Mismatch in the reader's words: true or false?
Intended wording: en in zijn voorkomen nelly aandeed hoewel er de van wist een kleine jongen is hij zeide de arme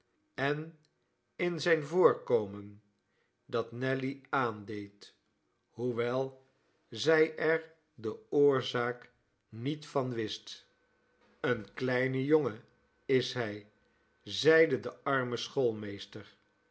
true